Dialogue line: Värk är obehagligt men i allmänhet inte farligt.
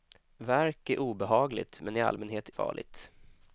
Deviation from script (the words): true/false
true